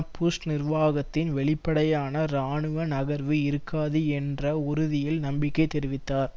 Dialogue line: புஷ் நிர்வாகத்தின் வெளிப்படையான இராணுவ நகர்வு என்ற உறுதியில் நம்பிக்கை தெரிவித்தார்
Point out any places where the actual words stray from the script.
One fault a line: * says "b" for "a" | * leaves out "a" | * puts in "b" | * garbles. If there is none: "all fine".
* puts in "இருக்காது"